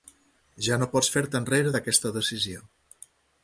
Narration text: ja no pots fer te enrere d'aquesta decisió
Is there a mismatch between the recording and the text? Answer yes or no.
no